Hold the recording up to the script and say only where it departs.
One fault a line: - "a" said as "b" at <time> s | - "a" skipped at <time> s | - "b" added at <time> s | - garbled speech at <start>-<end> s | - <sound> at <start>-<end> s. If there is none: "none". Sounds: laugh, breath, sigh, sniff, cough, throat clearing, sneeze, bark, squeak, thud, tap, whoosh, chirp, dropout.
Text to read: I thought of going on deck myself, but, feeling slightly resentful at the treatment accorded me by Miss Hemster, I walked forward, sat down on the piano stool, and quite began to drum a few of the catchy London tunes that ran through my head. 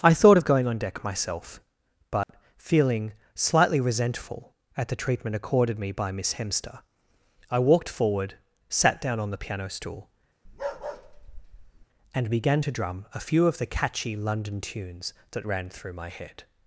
- dropout at 2.2-2.3 s
- bark at 10.4-11.9 s
- "quite" skipped at 12.3 s